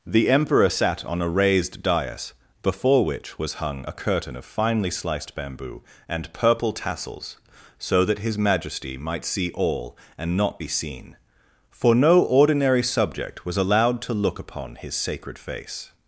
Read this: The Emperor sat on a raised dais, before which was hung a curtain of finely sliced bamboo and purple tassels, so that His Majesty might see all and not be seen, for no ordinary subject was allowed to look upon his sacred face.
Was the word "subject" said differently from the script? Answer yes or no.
no